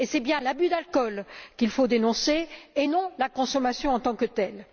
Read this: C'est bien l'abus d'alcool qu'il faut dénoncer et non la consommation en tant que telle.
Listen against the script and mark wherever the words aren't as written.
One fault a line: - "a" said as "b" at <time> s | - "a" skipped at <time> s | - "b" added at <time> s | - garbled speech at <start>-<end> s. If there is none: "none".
none